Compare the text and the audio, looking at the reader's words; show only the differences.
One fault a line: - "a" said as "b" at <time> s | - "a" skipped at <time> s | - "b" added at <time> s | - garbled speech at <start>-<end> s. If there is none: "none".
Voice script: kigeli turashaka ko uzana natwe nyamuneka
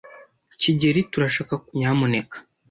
- "uzana natwe" skipped at 1.7 s